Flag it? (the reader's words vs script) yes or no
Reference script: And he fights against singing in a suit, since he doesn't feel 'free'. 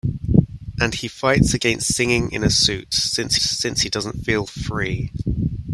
yes